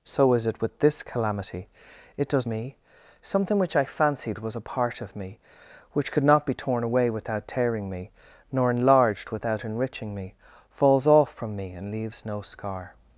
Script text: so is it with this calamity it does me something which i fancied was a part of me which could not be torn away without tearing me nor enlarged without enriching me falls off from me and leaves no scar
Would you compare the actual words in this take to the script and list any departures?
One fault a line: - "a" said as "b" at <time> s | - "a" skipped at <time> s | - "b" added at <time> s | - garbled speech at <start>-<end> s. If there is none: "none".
none